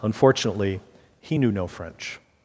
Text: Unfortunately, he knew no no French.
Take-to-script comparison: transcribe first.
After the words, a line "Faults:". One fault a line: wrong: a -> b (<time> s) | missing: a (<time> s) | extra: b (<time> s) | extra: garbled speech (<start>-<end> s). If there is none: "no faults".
Unfortunately, he knew no French.
Faults:
missing: no (1.7 s)